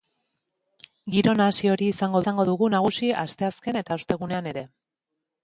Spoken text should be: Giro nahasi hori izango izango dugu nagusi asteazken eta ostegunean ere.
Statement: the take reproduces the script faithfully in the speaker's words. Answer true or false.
true